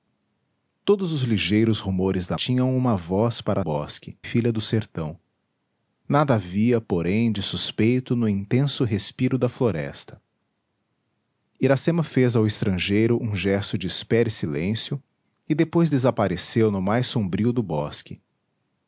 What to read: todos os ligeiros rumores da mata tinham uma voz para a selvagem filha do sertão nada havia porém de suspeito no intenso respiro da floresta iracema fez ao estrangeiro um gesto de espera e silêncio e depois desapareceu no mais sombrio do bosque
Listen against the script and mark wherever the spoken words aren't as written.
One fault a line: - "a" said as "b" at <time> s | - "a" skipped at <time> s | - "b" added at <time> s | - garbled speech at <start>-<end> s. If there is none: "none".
- "mata" skipped at 2.4 s
- "selvagem" said as "bosque" at 3.6 s